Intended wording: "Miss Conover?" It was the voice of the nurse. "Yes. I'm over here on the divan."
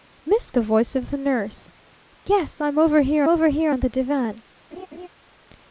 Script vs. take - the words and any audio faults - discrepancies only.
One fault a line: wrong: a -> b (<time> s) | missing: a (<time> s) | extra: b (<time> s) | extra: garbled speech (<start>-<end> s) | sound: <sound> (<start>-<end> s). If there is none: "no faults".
missing: Conover It was (0.5 s)
extra: over here (3.3 s)
sound: laugh (4.7-5.1 s)